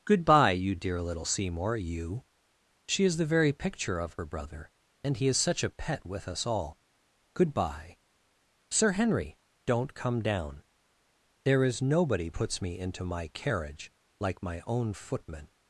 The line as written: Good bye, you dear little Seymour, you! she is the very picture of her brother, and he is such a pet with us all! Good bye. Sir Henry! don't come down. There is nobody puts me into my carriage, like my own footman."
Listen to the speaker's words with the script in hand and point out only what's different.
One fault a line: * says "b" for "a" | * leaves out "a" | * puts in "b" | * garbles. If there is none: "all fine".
all fine